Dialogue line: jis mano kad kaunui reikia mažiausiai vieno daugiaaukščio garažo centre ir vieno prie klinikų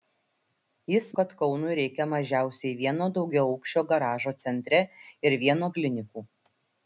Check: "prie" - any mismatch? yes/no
yes